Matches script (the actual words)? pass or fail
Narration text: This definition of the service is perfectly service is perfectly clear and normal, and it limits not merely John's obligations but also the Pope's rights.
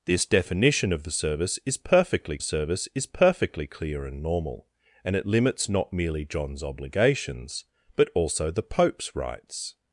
pass